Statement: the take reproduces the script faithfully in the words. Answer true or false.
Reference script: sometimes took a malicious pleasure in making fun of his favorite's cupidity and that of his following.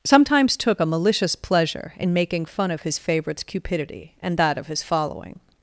true